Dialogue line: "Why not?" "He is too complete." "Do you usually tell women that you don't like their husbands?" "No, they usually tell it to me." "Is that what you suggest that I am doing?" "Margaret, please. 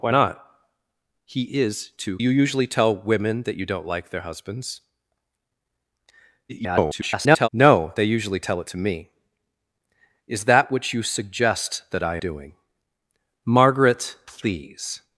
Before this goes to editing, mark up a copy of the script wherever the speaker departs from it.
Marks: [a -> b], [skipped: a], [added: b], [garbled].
"Why not?" "He is too [skipped: complete." "Do] you usually tell women that you don't like their husbands?" [garbled] "No, they usually tell it to me." "Is that what you suggest that I [skipped: am] doing?" "Margaret, please.